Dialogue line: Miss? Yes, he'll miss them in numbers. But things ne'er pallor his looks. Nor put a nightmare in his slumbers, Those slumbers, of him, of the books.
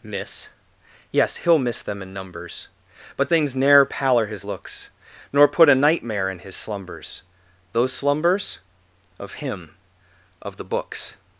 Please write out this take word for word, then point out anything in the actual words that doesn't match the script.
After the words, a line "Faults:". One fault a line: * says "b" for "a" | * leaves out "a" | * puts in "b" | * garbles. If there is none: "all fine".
Miss? Yes, he'll miss them in numbers. But things ne'er pallor his looks. Nor put a nightmare in his slumbers, Those slumbers, of him, of the books.
Faults:
all fine